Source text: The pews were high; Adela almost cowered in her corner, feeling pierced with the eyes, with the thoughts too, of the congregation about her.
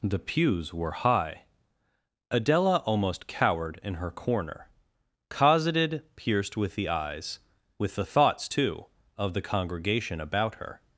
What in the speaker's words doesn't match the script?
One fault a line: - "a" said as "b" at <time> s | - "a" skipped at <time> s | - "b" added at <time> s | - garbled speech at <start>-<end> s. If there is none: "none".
- "feeling" said as "cosseted" at 5.3 s